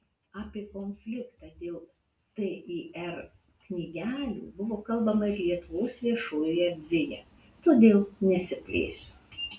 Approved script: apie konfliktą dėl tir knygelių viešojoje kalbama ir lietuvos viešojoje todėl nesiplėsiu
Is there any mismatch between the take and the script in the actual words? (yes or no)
yes